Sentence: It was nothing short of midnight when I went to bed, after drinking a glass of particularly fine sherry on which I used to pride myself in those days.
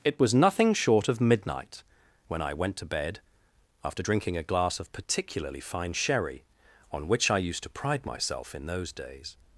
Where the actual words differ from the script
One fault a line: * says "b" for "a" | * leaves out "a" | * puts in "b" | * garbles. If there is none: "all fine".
all fine